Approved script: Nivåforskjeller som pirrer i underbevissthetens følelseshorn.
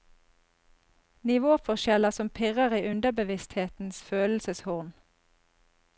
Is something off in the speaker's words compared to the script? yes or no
no